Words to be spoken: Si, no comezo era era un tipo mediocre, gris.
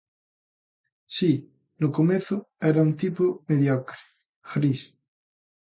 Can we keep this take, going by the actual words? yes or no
no